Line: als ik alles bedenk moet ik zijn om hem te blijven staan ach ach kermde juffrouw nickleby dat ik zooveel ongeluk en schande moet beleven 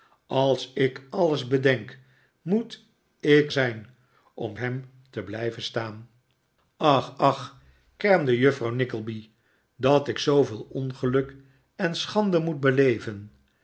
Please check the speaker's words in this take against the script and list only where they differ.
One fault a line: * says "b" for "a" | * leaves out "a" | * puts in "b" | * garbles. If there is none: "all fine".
all fine